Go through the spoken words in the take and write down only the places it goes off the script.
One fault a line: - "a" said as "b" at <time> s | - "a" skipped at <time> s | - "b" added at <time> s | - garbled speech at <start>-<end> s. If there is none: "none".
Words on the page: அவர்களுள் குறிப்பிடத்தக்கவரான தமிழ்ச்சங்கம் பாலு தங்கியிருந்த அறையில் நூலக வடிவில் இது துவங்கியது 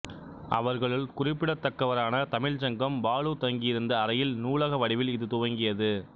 none